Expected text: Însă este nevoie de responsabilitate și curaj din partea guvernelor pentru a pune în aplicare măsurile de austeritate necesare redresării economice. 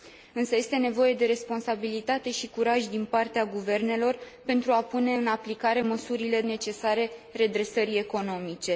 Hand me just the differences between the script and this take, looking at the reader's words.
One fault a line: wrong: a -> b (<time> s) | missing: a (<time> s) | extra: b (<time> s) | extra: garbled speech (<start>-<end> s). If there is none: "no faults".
missing: de austeritate (6.4 s)